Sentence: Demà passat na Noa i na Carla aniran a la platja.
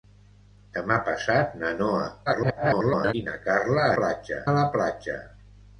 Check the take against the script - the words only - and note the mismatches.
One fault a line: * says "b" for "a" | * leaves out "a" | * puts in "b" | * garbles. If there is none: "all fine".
* garbles
* says "platja" for "aniran"